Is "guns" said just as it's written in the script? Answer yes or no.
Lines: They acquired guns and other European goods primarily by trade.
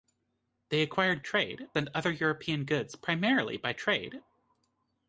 no